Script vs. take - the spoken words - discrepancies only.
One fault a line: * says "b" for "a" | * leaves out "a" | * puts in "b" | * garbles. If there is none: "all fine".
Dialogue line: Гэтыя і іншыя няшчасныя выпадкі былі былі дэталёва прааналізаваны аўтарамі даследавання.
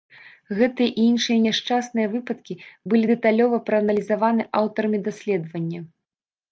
* leaves out "былі"